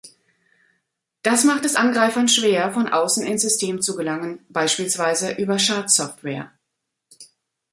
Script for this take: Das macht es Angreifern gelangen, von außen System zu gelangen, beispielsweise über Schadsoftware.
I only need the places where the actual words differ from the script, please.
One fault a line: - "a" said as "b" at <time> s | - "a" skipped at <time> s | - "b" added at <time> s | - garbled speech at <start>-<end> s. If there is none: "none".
- "gelangen" said as "schwer" at 2.3 s
- "ins" added at 3.2 s